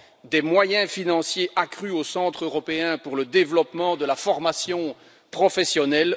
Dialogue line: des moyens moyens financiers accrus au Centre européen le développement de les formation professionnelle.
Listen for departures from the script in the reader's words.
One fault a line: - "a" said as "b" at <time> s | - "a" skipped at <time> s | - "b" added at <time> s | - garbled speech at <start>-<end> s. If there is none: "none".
- "moyens" skipped at 0.9 s
- "pour" added at 3.0 s
- "les" said as "la" at 4.0 s